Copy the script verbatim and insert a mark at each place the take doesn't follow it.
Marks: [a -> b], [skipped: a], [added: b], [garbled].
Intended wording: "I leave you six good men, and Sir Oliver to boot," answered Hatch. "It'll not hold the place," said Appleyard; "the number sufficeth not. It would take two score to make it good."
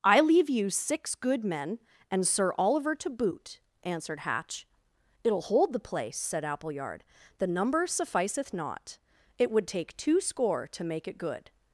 "I leave you six good men, and Sir Oliver to boot," answered Hatch. "It'll [skipped: not] hold the place," said Appleyard; "the number sufficeth not. It would take two score to make it good."